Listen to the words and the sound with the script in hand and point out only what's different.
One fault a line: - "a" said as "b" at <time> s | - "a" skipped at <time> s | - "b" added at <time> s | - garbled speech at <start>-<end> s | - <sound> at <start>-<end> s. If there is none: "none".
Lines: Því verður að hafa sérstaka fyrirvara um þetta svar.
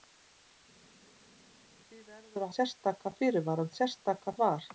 - "hafa" skipped at 2.5 s
- "þetta" said as "sérstaka" at 3.8 s